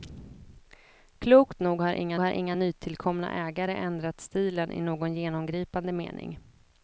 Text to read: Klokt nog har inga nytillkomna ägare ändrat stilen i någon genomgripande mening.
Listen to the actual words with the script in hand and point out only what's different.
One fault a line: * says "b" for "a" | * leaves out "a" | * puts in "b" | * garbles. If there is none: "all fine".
* puts in "har inga"